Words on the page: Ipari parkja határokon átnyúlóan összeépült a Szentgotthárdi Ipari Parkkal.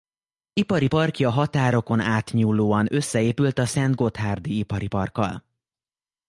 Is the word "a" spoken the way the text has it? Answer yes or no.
yes